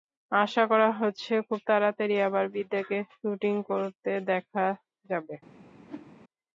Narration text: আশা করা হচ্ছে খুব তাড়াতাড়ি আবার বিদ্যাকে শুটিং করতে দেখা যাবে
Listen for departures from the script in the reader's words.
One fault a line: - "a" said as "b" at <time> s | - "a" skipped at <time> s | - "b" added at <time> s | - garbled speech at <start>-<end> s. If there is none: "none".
none